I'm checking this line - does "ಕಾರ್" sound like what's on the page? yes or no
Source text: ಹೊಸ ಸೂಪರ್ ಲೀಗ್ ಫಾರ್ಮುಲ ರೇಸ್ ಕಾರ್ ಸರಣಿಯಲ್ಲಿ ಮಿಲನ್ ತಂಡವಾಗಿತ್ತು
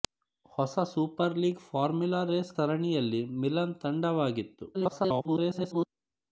no